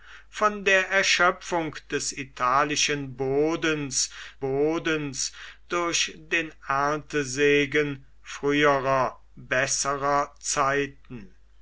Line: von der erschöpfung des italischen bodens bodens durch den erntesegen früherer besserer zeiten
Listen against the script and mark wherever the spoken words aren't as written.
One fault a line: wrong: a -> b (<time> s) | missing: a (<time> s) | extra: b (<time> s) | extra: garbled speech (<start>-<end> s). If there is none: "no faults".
no faults